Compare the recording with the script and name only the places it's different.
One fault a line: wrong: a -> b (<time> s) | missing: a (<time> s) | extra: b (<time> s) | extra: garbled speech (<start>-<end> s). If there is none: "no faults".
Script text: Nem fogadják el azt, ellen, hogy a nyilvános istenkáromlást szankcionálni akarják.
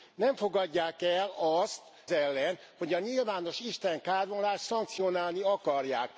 no faults